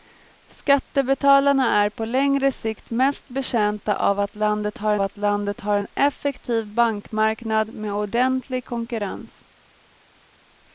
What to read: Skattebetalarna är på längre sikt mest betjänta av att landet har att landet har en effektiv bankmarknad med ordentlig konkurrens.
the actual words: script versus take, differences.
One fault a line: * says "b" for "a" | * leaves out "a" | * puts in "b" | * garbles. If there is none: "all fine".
all fine